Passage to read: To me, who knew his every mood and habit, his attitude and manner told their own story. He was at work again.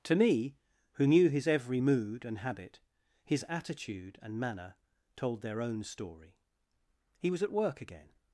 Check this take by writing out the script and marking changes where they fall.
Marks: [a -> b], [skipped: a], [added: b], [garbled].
To me, who knew his every mood and habit, his attitude and manner told their own story. He was at work again.